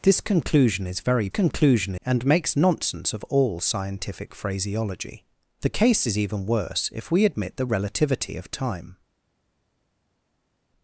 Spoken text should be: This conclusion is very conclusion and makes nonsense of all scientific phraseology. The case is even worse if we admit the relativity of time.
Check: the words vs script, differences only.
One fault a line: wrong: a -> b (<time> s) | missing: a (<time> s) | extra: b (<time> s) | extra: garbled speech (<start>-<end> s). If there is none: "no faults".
no faults